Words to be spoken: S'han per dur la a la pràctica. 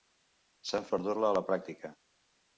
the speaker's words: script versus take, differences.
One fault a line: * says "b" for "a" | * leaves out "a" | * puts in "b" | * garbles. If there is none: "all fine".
all fine